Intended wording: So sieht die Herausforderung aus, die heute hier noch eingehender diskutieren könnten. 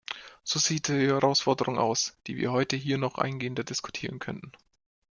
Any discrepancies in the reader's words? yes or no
yes